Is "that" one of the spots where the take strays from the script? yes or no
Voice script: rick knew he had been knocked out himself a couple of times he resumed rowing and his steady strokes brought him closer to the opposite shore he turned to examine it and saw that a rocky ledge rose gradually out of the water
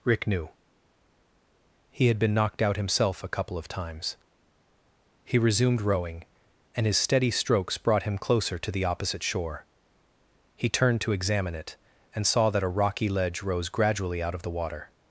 no